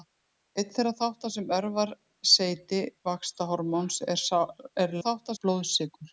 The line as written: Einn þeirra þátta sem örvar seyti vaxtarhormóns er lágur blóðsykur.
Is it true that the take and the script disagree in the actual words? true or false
true